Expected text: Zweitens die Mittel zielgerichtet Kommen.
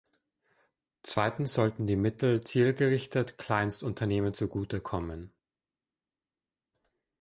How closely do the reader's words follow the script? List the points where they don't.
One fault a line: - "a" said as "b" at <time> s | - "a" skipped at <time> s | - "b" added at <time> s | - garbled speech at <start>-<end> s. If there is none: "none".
- "sollten" added at 1.5 s
- "Kleinstunternehmen zugute" added at 3.4 s